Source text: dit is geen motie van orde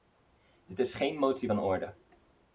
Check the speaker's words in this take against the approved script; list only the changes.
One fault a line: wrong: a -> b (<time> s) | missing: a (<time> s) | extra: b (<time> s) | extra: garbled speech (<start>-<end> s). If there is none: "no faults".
no faults